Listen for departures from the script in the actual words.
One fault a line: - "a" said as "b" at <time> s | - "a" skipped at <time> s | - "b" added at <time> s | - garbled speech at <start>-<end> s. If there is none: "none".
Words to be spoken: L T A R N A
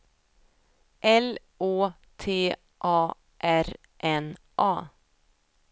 - "Å" added at 1.6 s